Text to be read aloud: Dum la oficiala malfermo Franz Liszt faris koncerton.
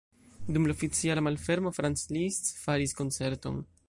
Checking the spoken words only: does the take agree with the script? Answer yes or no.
yes